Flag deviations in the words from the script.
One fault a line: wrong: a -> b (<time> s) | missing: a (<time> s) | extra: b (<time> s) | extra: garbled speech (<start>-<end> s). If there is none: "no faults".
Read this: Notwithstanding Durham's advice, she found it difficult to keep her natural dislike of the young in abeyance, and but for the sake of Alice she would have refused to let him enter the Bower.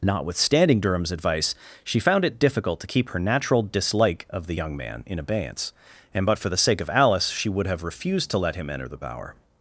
extra: man (4.8 s)